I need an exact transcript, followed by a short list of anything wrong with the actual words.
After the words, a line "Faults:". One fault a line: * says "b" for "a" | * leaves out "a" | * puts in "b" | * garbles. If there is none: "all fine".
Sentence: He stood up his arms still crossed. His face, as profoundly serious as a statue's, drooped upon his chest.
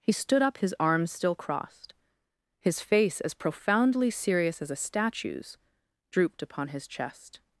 He stood up his arms still crossed. His face, as profoundly serious as a statue's, drooped upon his chest.
Faults:
all fine